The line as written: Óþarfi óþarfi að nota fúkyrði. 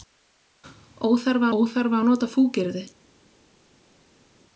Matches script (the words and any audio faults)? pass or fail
pass